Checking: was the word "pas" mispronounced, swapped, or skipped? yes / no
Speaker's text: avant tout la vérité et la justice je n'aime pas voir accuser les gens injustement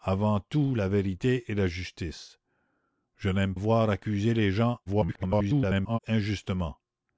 yes